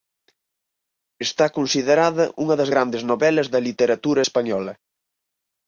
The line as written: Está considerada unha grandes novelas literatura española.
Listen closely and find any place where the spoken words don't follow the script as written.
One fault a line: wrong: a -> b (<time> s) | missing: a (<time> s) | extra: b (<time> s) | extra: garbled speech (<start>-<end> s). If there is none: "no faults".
extra: das (2.6 s)
extra: da (3.5 s)